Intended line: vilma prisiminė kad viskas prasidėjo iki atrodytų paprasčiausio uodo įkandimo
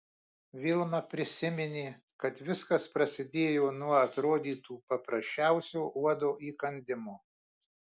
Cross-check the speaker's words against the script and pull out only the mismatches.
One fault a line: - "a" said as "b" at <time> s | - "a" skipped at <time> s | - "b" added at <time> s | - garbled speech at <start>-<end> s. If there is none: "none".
- "iki" said as "nuo" at 3.8 s